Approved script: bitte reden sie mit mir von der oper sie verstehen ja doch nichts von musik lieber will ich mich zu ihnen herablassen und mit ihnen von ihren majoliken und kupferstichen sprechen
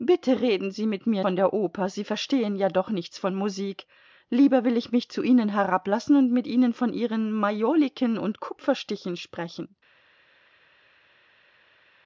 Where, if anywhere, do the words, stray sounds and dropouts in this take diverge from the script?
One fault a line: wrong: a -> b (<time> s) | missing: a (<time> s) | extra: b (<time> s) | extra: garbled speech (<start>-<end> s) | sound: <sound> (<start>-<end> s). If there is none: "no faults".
no faults